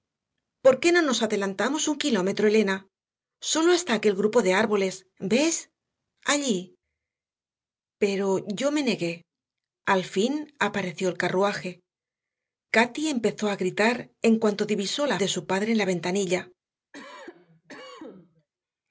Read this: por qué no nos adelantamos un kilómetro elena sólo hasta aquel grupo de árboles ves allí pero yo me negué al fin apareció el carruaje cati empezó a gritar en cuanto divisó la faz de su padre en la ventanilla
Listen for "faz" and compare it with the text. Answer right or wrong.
wrong